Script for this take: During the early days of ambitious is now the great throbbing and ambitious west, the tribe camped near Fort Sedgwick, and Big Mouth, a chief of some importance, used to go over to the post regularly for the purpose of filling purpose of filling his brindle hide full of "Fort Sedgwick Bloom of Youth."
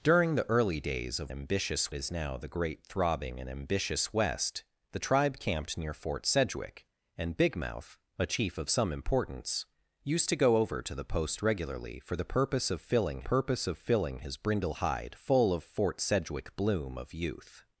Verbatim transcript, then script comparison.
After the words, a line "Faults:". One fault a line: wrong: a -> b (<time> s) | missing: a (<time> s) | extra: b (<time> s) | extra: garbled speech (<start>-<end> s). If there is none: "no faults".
During the early days of ambitious is now the great throbbing and ambitious west, the tribe camped near Fort Sedgwick, and Big Mouth, a chief of some importance, used to go over to the post regularly for the purpose of filling purpose of filling his brindle hide full of "Fort Sedgwick Bloom of Youth."
Faults:
no faults